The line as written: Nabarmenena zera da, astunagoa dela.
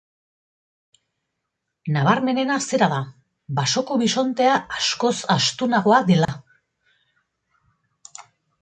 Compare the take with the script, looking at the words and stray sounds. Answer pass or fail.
fail